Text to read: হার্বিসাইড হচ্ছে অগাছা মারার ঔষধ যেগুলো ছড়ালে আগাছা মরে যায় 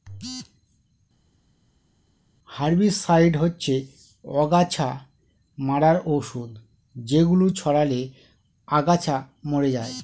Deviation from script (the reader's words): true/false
false